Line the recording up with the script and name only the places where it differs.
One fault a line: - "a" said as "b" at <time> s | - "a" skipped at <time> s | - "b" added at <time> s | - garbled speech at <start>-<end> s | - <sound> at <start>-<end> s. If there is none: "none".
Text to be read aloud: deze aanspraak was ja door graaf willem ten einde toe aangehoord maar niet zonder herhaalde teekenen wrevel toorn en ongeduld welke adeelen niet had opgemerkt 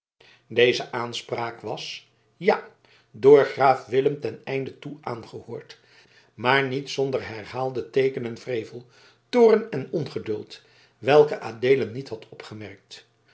none